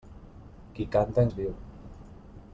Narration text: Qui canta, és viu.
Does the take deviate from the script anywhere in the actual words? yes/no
no